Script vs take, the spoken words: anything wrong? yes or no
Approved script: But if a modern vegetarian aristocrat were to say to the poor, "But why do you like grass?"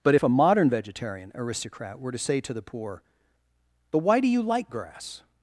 no